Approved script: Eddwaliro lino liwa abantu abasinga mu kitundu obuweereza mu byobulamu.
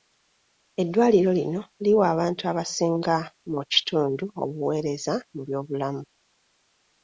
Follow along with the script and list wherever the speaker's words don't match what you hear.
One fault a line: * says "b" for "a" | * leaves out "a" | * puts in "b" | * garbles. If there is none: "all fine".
all fine